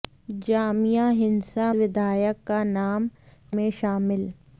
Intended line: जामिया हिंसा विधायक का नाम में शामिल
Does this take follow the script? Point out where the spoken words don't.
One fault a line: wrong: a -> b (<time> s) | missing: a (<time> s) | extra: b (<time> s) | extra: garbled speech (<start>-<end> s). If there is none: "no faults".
no faults